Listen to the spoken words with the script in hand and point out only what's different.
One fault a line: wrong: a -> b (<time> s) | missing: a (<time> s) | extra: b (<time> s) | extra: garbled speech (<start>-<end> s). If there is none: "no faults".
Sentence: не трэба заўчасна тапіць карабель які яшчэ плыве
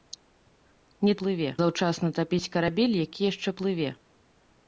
wrong: трэба -> плыве (1.2 s)